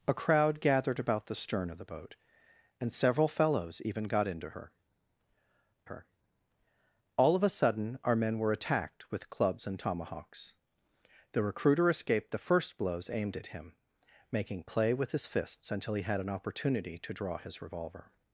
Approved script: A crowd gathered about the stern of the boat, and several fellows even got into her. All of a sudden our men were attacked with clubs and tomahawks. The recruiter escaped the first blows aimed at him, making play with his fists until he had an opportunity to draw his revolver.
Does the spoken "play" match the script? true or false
true